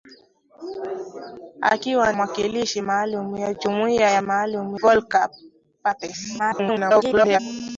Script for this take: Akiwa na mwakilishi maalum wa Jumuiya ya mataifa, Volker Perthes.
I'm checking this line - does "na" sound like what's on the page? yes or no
no